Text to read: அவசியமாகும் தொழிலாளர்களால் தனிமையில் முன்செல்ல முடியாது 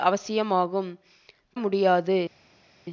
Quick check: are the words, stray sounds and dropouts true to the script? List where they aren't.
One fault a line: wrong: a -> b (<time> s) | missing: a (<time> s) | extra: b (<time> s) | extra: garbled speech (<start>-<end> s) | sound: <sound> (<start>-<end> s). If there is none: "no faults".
missing: தொழிலாளர்களால் தனிமையில் முன்செல்ல (0.9 s)